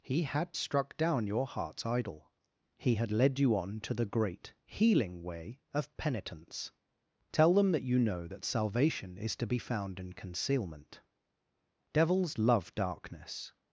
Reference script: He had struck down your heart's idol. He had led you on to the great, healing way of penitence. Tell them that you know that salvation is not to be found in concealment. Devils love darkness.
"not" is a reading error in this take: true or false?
true